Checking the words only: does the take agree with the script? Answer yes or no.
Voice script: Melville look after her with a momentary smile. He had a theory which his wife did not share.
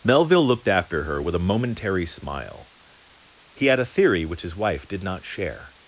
no